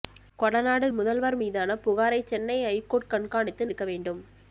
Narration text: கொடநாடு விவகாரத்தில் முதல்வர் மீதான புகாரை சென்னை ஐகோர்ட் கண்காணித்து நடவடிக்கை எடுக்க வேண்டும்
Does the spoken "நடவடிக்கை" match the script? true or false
false